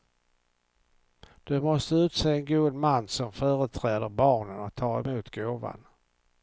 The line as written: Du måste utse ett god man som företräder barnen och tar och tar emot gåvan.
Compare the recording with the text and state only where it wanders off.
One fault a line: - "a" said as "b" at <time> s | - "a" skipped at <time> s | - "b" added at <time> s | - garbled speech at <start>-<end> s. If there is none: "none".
- "ett" said as "en" at 2.3 s
- "och tar" skipped at 5.0 s